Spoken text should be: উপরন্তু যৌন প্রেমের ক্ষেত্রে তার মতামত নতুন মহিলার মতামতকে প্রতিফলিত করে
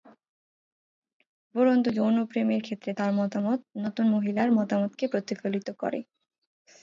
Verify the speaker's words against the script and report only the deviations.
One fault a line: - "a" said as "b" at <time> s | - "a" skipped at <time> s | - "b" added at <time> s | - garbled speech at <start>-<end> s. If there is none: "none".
none